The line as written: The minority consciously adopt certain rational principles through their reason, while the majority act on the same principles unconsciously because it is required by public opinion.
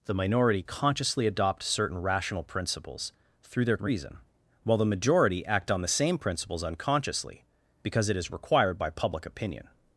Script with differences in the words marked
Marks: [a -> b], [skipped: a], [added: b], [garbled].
The minority consciously adopt certain rational principles through their reason, while the majority act on the same principles unconsciously because it is required by public opinion.